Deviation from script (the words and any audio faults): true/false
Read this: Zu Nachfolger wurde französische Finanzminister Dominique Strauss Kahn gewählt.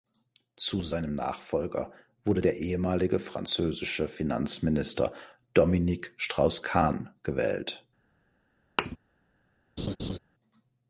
true